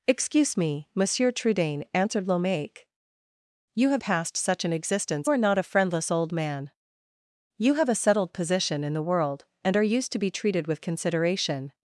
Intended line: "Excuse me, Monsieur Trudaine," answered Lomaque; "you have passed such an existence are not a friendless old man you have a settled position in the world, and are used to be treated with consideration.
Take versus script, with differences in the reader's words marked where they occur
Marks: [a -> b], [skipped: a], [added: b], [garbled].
"Excuse me, Monsieur Trudaine," answered Lomaque; "you have passed such an existence are not a friendless old man you have a settled position in the world, and are used to be treated with consideration.